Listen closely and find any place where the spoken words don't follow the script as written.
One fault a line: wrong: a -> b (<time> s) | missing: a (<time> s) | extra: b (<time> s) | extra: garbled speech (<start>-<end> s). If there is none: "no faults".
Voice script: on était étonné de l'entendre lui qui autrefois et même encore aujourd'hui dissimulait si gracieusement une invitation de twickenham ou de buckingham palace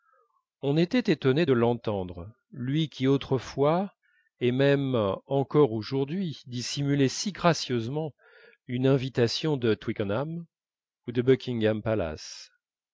no faults